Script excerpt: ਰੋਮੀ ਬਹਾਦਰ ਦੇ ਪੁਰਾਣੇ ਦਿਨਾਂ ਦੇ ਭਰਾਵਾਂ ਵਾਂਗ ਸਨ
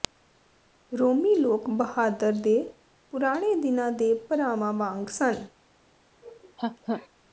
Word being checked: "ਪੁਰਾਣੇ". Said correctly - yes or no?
yes